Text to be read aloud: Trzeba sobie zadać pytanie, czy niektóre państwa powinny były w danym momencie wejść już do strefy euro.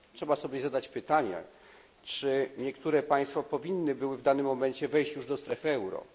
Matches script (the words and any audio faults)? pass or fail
pass